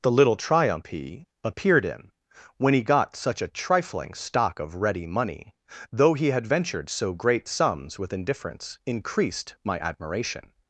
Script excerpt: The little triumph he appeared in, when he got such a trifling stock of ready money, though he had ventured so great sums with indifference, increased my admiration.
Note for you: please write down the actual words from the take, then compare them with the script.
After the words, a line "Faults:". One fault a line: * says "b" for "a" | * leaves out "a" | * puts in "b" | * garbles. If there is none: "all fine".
The little triumph he appeared in, when he got such a trifling stock of ready money, though he had ventured so great sums with indifference, increased my admiration.
Faults:
all fine